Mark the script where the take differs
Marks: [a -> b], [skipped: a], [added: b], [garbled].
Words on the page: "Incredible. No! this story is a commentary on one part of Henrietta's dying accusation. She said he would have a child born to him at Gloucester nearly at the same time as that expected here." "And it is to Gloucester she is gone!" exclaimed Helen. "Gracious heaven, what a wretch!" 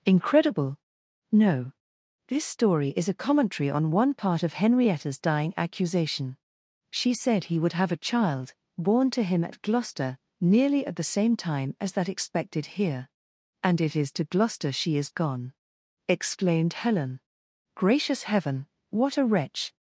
"Incredible. No! this story is a commentary on one part of Henrietta's dying accusation. She said he would have a child born to him at Gloucester nearly at the same time as that expected here." "And it is to Gloucester she is gone!" exclaimed Helen. "Gracious heaven, what a wretch!"